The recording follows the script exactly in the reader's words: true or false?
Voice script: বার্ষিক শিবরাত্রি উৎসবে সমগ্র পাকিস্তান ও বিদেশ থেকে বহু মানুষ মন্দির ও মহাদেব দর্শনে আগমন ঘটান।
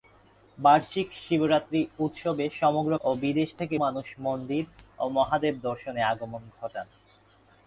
false